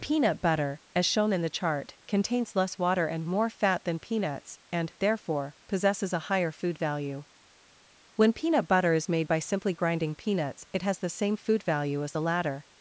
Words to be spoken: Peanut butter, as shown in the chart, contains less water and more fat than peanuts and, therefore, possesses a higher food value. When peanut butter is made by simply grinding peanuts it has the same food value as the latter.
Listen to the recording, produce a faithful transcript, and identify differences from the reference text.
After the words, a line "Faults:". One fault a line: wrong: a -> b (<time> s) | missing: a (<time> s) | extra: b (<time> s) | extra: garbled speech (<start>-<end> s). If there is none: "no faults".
Peanut butter, as shown in the chart, contains less water and more fat than peanuts and, therefore, possesses a higher food value. When peanut butter is made by simply grinding peanuts it has the same food value as the latter.
Faults:
no faults